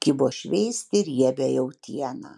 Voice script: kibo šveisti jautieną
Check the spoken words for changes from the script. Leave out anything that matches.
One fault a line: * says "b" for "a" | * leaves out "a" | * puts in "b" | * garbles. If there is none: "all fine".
* puts in "riebią"